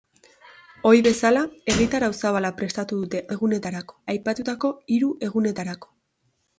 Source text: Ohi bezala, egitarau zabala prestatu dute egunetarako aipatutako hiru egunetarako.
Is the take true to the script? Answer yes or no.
yes